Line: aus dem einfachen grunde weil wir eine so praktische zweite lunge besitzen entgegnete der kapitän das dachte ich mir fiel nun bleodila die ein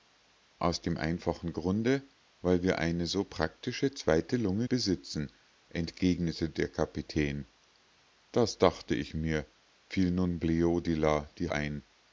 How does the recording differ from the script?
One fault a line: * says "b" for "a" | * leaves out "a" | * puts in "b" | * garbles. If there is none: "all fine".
all fine